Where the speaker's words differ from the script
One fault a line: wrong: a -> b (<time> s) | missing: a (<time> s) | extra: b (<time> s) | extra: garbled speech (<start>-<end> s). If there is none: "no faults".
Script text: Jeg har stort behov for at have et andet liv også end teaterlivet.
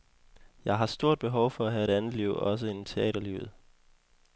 no faults